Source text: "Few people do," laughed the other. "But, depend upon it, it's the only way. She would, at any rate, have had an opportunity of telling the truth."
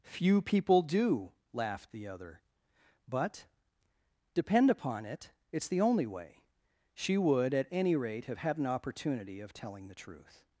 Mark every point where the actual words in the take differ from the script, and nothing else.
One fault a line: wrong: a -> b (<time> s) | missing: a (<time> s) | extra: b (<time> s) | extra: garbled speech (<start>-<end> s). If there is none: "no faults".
no faults